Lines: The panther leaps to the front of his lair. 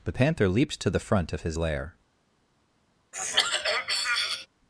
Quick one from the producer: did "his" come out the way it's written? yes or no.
yes